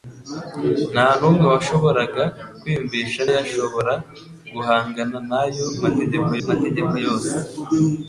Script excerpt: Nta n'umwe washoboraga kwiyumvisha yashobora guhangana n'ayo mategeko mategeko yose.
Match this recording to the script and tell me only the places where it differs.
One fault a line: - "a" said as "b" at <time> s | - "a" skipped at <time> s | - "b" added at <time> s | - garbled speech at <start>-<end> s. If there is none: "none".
none